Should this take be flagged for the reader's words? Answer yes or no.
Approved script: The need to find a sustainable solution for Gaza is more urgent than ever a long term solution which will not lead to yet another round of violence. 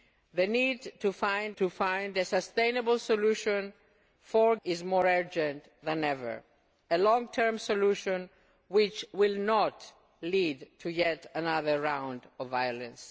yes